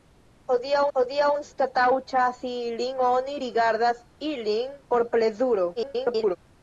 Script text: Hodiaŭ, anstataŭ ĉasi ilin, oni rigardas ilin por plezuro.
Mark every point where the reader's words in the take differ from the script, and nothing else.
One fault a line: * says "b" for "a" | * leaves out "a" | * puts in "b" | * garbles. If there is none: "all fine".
* puts in "hodiaŭ"
* garbles